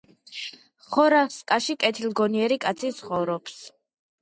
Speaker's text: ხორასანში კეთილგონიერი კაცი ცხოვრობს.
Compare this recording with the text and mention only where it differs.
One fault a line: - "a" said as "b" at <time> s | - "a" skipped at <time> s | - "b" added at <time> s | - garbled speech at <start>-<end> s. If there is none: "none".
none